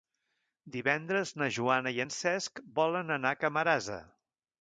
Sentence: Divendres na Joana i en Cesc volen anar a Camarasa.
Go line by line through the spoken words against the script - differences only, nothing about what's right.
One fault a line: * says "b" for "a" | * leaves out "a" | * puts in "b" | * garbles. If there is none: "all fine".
all fine